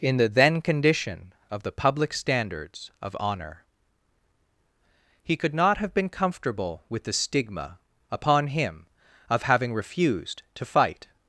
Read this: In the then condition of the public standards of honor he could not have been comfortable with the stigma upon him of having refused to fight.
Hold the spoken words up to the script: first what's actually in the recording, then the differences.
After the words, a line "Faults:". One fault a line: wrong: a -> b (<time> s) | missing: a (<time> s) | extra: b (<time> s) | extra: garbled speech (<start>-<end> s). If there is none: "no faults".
In the then condition of the public standards of honor he could not have been comfortable with the stigma upon him of having refused to fight.
Faults:
no faults